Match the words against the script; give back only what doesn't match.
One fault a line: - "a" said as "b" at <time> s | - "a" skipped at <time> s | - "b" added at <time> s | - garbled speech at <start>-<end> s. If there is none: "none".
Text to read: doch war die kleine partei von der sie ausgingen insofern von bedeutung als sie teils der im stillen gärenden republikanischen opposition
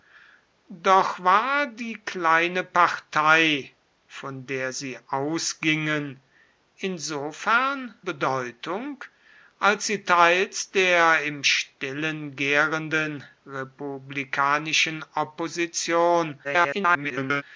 - "von" skipped at 7.9 s
- garbled speech at 16.4-17.4 s